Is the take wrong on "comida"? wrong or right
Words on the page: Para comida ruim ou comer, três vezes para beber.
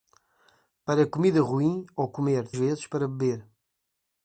right